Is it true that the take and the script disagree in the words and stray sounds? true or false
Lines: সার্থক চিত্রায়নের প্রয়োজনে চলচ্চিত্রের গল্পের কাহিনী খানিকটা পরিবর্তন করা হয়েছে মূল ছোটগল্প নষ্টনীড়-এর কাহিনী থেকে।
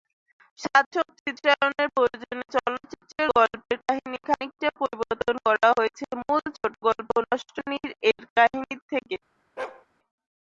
true